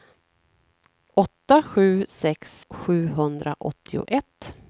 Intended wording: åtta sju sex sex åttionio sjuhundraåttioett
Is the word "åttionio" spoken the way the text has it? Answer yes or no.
no